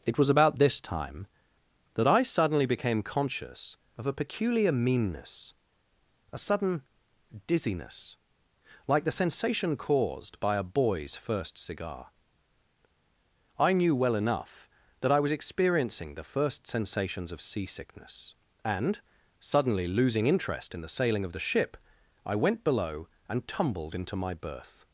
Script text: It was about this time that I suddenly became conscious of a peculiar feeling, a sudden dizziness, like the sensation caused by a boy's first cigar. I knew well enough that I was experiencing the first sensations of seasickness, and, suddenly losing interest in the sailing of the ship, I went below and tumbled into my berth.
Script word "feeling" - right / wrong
wrong